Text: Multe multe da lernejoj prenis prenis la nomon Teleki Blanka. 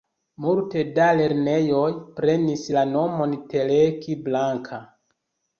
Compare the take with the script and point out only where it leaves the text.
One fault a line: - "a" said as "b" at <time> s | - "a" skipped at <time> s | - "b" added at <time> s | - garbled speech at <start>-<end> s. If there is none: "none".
- "multe" skipped at 0.8 s
- "prenis" skipped at 2.6 s